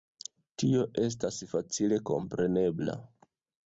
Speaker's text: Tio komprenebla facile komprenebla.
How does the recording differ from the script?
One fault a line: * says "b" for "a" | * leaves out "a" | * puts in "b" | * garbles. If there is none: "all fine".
* says "estas" for "komprenebla"